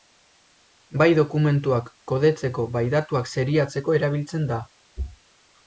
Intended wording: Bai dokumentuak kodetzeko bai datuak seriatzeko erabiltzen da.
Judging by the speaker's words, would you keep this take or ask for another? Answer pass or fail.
pass